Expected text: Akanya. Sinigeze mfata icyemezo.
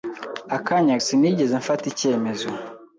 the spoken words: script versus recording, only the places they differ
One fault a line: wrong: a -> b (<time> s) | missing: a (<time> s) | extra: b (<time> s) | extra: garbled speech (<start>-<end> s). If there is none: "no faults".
no faults